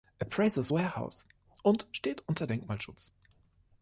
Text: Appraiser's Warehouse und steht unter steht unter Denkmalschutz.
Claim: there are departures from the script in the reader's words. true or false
true